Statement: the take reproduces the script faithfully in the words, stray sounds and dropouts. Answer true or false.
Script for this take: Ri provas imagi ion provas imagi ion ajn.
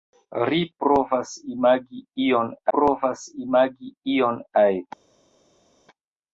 true